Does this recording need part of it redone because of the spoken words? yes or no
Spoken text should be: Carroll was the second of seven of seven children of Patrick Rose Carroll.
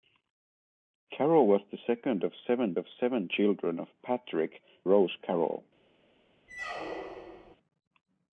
no